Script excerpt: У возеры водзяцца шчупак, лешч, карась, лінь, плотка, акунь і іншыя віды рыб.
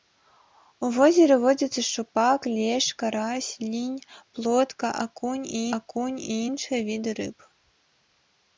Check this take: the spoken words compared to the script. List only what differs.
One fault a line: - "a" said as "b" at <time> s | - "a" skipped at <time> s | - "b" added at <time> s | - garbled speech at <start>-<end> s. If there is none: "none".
- "акунь і" added at 5.8 s